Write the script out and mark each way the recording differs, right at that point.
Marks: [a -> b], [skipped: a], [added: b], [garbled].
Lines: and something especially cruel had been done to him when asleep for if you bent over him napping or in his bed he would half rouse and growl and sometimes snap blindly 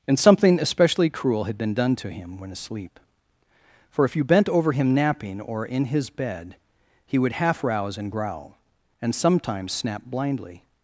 and something especially cruel had been done to him when asleep for if you bent over him napping or in his bed he would half rouse and growl and sometimes snap blindly